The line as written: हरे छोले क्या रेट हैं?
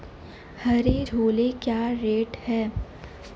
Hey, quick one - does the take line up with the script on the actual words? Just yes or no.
yes